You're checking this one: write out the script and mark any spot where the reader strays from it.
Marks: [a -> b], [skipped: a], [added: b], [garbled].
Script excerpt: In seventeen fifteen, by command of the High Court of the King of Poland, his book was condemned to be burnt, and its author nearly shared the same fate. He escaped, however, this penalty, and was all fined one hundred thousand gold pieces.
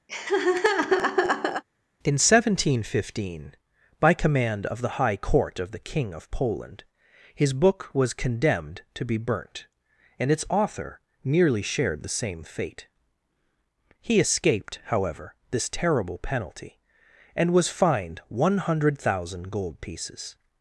In seventeen fifteen, by command of the High Court of the King of Poland, his book was condemned to be burnt, and its author nearly shared the same fate. He escaped, however, this [added: terrible] penalty, and was [skipped: all] fined one hundred thousand gold pieces.